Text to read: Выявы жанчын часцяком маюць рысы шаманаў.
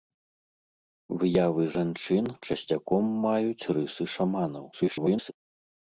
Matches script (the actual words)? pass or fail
fail